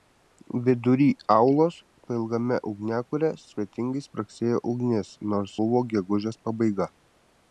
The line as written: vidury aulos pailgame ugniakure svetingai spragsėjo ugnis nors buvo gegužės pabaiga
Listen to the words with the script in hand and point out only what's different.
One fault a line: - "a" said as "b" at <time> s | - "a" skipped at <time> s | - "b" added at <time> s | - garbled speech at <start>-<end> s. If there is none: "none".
none